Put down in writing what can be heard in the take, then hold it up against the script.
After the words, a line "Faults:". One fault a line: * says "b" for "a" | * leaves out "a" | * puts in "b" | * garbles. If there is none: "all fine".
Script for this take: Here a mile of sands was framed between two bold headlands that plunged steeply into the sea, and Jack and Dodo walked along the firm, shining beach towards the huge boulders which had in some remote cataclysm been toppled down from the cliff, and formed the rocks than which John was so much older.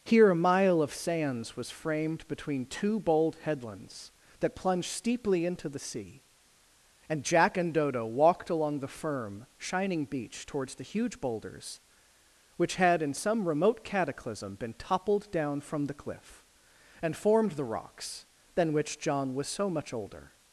Here a mile of sands was framed between two bold headlands that plunged steeply into the sea, and Jack and Dodo walked along the firm, shining beach towards the huge boulders which had in some remote cataclysm been toppled down from the cliff, and formed the rocks than which John was so much older.
Faults:
all fine